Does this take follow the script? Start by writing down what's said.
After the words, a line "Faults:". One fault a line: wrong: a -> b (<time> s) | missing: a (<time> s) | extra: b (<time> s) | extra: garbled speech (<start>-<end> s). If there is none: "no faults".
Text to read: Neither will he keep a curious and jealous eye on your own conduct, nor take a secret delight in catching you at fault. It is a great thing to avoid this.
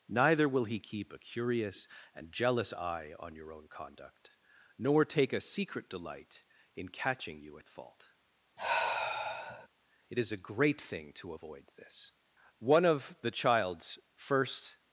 Neither will he keep a curious and jealous eye on your own conduct, nor take a secret delight in catching you at fault. It is a great thing to avoid this. One of the child's first
Faults:
extra: One of the child's first (12.6 s)